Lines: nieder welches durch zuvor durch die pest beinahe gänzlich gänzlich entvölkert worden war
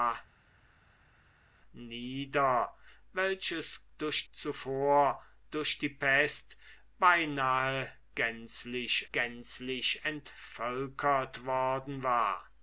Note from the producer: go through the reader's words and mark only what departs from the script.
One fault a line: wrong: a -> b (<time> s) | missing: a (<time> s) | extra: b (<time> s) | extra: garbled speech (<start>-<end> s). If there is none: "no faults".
no faults